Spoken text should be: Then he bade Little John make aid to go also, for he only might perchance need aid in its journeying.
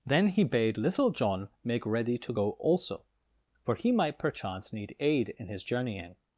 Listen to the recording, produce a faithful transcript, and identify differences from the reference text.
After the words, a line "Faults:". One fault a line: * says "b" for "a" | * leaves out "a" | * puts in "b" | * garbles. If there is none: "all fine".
Then he bade Little John make ready to go also, for he might perchance need aid in his journeying.
Faults:
* says "ready" for "aid"
* leaves out "only"
* says "his" for "its"